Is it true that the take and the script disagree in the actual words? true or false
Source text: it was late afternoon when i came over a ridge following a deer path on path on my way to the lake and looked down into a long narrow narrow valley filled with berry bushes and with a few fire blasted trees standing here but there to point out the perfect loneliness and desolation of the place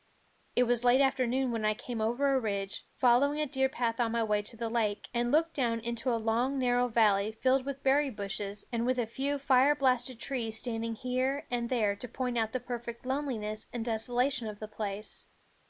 true